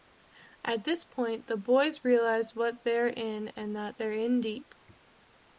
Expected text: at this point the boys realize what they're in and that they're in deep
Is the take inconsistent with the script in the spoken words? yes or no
no